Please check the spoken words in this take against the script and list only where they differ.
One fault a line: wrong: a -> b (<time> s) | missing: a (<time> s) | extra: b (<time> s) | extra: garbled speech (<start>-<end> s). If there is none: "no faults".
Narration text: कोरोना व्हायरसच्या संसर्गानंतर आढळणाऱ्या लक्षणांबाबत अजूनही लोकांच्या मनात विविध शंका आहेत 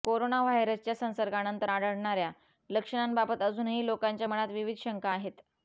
no faults